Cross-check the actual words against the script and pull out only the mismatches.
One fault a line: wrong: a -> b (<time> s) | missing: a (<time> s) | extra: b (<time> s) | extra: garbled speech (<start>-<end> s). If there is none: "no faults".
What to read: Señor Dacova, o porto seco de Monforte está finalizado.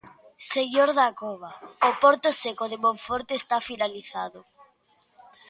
no faults